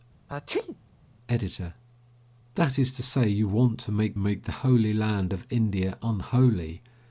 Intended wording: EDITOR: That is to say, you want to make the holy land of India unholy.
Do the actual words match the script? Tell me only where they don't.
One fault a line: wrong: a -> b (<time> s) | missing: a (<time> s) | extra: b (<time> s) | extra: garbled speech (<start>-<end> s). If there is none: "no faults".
extra: make (4.2 s)